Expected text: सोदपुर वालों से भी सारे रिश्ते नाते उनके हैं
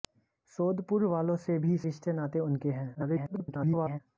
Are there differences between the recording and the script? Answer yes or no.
yes